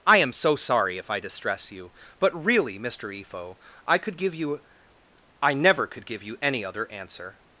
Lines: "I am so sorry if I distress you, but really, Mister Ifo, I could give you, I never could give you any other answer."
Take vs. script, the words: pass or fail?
pass